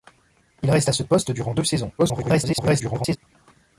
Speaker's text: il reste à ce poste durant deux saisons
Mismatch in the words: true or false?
true